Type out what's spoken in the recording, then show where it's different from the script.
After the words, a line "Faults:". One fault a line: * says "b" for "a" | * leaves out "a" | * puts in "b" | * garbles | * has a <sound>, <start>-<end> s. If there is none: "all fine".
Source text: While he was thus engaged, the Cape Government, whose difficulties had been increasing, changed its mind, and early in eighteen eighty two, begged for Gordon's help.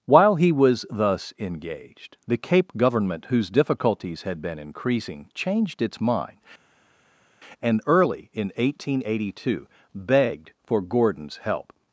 While he was thus engaged, the Cape Government, whose difficulties had been increasing, changed its mind, and early in eighteen eighty two, begged for Gordon's help.
Faults:
all fine